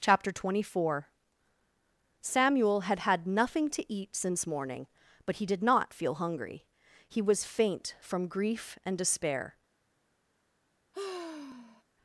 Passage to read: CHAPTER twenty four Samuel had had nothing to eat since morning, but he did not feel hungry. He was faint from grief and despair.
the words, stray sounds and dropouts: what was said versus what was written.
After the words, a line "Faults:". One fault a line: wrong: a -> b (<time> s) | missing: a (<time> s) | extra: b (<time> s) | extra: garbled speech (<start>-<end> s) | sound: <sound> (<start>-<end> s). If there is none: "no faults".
CHAPTER twenty four Samuel had had nothing to eat since morning, but he did not feel hungry. He was faint from grief and despair.
Faults:
sound: sigh (10.9-11.8 s)